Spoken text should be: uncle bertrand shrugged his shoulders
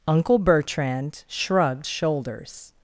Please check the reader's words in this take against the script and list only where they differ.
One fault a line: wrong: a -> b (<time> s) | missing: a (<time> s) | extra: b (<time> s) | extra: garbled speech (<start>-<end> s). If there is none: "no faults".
missing: his (1.9 s)